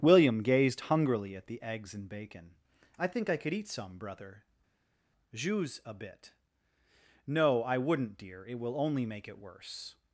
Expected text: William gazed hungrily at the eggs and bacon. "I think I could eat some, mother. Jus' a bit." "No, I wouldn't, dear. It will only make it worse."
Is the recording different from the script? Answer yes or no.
yes